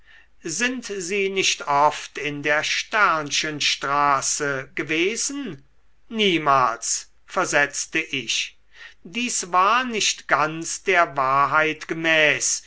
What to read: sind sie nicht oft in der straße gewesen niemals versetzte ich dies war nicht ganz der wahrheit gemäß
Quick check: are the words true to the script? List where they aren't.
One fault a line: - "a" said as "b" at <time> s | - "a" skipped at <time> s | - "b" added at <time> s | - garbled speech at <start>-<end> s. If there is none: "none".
none